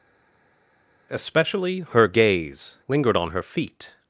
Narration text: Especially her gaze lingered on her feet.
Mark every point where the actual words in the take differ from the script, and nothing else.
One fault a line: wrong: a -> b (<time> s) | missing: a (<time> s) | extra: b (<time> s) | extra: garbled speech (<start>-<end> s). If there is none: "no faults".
no faults